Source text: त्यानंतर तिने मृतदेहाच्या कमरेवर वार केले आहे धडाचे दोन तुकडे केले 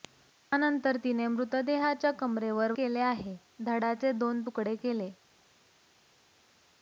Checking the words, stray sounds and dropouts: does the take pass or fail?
fail